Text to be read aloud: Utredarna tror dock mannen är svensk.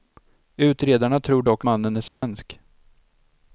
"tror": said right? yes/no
yes